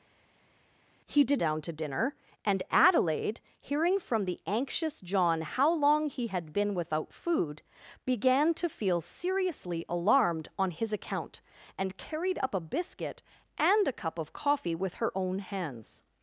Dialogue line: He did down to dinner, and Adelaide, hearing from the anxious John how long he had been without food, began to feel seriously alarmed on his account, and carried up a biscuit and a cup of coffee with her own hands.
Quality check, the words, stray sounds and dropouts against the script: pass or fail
pass